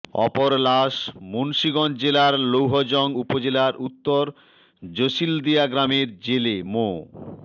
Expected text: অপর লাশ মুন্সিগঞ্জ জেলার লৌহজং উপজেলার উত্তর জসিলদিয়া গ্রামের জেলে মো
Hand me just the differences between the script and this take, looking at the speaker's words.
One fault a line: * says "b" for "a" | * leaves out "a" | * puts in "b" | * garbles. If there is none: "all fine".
all fine